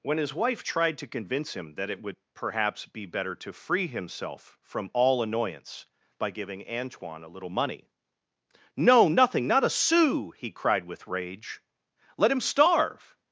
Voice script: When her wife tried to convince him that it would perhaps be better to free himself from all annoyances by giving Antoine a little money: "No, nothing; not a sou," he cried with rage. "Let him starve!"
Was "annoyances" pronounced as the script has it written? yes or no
no